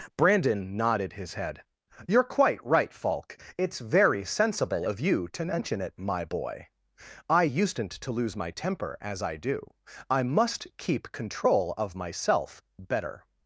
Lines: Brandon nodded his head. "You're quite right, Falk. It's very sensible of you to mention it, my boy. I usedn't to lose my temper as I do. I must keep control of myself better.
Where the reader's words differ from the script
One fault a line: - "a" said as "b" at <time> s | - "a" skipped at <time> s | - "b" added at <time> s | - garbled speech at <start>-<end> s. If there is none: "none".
none